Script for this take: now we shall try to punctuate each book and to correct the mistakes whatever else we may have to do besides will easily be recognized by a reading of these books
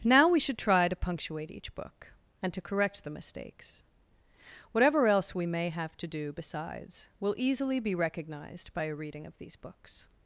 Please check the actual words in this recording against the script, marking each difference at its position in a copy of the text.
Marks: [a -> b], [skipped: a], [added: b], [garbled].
now we [shall -> should] try to punctuate each book and to correct the mistakes whatever else we may have to do besides will easily be recognized by a reading of these books